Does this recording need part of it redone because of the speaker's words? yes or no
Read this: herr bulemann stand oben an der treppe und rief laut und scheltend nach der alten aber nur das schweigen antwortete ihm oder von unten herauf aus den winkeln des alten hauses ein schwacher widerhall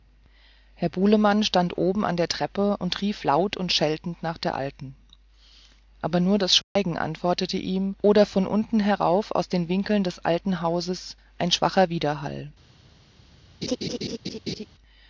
no